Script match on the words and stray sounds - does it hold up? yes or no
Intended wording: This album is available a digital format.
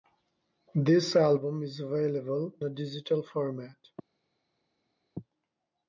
yes